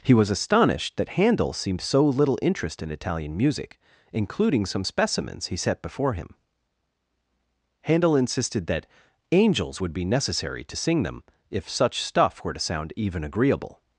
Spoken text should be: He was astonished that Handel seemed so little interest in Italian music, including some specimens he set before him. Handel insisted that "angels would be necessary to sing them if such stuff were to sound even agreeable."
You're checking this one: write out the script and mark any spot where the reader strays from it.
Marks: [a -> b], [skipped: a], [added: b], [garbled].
He was astonished that Handel seemed so little interest in Italian music, including some specimens he set before him. Handel insisted that "angels would be necessary to sing them if such stuff were to sound even agreeable."